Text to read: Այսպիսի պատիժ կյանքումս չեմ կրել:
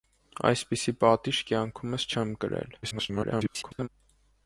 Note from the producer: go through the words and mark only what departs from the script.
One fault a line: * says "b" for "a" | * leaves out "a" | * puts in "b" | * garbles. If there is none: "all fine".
* garbles